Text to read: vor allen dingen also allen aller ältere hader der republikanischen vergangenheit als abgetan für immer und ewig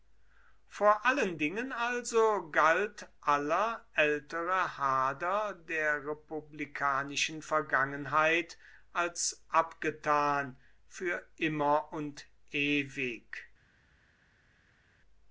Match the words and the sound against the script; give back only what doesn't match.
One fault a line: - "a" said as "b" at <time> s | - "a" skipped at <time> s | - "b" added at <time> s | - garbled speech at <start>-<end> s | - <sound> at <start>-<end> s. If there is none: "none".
- "allen" said as "galt" at 2.5 s